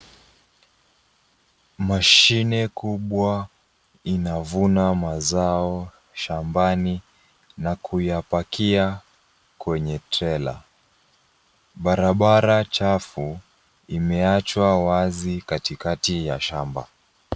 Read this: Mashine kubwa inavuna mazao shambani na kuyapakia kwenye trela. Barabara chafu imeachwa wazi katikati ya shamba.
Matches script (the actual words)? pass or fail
pass